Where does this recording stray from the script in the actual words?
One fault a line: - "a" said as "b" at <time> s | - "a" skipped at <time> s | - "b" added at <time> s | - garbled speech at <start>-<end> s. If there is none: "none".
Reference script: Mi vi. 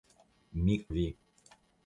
none